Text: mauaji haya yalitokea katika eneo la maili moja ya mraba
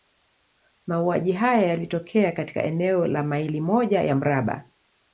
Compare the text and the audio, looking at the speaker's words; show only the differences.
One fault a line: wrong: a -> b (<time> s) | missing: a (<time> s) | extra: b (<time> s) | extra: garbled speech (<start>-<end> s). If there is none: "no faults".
no faults